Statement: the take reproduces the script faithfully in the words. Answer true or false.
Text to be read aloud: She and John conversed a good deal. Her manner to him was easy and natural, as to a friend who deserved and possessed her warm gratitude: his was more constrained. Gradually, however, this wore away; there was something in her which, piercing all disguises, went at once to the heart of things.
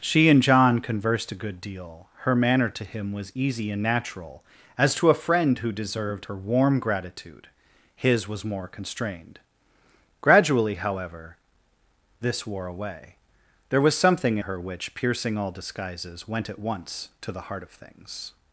false